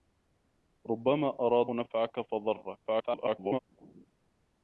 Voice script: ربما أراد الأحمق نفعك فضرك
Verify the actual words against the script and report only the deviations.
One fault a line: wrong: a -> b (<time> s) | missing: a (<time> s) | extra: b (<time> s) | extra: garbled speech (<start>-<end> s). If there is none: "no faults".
missing: الأحمق (1.7 s)
extra: garbled speech (2.9-3.6 s)